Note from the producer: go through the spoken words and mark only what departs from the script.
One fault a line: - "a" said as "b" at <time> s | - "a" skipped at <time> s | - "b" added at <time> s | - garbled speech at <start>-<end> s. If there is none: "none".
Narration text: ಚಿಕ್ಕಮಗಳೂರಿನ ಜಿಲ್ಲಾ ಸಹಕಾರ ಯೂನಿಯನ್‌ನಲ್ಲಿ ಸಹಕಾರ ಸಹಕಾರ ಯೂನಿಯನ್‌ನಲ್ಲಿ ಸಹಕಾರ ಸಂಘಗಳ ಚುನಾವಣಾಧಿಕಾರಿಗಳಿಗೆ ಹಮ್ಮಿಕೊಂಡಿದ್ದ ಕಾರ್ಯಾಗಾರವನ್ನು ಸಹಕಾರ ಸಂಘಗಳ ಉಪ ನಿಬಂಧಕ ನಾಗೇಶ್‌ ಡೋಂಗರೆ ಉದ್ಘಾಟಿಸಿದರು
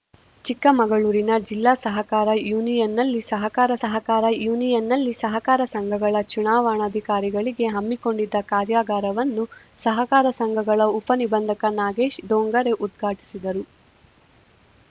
none